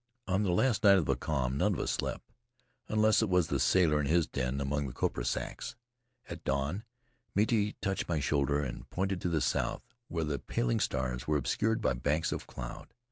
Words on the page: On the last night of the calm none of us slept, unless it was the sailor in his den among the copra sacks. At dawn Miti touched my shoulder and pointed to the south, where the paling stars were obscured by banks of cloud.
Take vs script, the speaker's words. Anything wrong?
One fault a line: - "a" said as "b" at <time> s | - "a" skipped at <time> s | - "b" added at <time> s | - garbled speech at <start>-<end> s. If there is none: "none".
none